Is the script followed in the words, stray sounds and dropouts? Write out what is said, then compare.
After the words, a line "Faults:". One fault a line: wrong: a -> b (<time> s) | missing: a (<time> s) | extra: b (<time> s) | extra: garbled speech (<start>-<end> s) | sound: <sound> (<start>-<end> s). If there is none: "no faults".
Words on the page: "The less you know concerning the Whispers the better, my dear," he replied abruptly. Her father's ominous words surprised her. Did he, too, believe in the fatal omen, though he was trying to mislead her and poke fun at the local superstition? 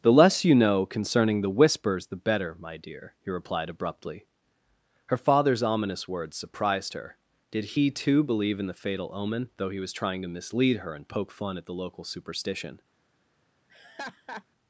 "The less you know concerning the Whispers the better, my dear," he replied abruptly. Her father's ominous words surprised her. Did he, too, believe in the fatal omen, though he was trying to mislead her and poke fun at the local superstition?
Faults:
sound: laugh (13.7-14.4 s)